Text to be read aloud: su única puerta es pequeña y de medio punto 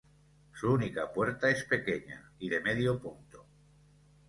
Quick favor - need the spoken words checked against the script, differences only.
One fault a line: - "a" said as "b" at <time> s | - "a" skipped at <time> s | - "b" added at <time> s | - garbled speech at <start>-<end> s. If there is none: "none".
none